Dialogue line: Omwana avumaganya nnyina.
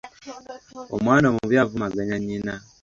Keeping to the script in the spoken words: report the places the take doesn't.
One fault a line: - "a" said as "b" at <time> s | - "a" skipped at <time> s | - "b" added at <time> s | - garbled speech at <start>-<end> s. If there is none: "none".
- "omubi" added at 1.3 s